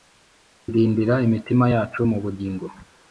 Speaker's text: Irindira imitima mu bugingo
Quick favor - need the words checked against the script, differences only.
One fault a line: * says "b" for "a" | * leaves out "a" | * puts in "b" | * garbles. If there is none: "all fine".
* puts in "yacu"